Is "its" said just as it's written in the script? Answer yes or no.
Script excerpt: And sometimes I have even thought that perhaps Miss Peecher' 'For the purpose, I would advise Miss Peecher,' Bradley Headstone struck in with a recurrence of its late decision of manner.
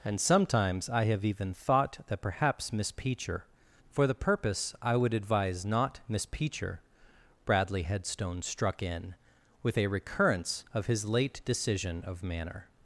no